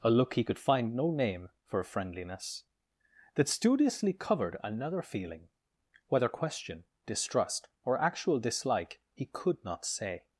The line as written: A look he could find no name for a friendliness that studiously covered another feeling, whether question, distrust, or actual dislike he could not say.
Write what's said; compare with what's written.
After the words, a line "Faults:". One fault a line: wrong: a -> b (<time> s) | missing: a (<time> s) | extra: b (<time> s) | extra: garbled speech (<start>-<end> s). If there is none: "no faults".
A look he could find no name for friendliness that studiously covered another feeling, whether question, distrust, or actual dislike he could not say.
Faults:
missing: a (1.8 s)